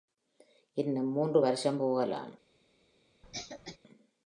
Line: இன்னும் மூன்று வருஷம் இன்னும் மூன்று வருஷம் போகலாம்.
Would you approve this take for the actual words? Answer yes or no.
no